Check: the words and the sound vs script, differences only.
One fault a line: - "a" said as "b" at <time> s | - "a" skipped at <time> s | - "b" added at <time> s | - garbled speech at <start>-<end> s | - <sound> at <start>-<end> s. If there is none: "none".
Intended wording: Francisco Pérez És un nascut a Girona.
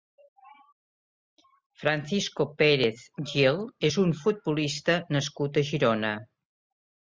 - "Gil" added at 3.3 s
- "futbolista" added at 4.2 s